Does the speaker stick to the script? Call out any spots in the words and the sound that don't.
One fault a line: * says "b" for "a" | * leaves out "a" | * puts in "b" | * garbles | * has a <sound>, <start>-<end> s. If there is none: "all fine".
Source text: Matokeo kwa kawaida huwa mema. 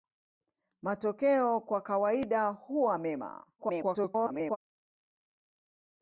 * garbles